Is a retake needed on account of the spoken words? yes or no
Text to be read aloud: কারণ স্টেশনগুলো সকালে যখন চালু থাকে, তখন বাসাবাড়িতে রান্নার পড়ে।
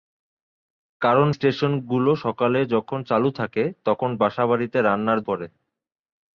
no